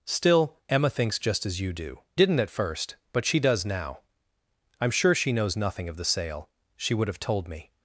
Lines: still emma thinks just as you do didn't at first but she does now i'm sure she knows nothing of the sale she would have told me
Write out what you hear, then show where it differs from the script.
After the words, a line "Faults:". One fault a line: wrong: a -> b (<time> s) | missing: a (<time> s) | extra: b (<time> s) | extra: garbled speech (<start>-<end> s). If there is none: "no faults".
still emma thinks just as you do didn't at first but she does now i'm sure she knows nothing of the sale she would have told me
Faults:
no faults